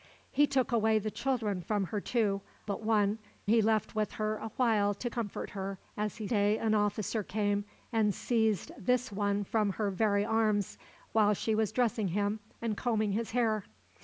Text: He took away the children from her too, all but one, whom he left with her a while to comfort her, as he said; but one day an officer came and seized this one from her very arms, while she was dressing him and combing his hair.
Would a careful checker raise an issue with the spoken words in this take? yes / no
yes